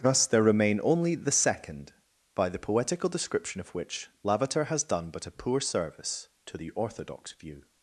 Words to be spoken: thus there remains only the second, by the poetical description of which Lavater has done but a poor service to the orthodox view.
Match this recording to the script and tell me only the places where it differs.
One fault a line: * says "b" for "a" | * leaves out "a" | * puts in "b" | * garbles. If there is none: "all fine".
* says "remain" for "remains"